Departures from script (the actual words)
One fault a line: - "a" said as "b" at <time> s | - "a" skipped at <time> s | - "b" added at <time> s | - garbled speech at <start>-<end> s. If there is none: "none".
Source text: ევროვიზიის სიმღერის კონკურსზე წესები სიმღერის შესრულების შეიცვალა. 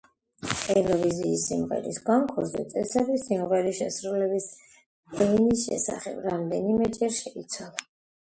- "ენის შესახებ რამდენიმეჯერ" added at 5.3 s